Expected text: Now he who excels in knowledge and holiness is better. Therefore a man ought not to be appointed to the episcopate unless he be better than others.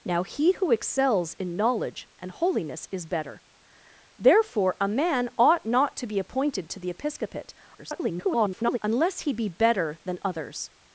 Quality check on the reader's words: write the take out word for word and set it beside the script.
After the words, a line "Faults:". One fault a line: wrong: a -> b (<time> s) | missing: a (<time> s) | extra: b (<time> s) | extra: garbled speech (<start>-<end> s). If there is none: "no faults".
Now he who excels in knowledge and holiness is better. Therefore a man ought not to be appointed to the episcopate [garbled] unless he be better than others.
Faults:
extra: garbled speech (7.8-8.8 s)